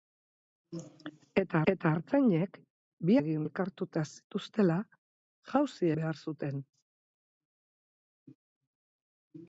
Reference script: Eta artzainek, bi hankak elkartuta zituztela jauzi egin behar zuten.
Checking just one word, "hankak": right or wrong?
wrong